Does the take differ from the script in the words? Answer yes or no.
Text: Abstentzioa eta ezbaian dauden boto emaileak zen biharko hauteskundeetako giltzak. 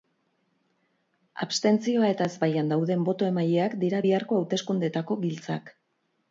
yes